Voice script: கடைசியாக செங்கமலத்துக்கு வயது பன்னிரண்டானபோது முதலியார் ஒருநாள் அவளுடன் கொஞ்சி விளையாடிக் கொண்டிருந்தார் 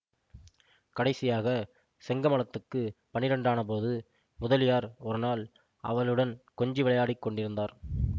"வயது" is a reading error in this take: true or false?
true